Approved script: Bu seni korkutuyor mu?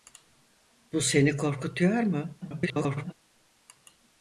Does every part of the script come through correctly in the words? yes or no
no